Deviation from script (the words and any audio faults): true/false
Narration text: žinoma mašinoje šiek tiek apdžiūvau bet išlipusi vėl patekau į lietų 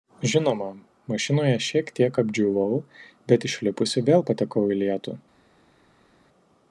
false